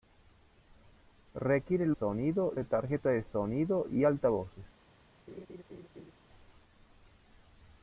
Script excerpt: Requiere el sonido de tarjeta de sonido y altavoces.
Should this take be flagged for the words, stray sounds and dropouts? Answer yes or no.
yes